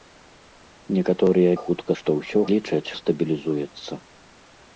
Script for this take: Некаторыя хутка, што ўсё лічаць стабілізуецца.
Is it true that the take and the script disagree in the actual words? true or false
false